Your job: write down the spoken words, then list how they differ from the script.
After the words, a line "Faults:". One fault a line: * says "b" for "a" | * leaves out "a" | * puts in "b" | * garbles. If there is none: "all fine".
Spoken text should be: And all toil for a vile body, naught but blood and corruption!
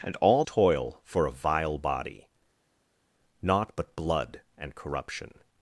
And all toil for a vile body, naught but blood and corruption!
Faults:
all fine